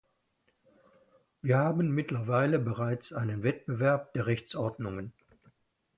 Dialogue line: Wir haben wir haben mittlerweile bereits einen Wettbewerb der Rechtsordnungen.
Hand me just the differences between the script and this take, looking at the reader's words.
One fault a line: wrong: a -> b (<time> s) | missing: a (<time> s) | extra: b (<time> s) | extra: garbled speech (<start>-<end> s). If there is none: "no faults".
missing: wir haben (1.9 s)